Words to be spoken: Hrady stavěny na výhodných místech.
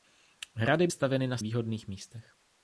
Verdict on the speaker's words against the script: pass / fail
pass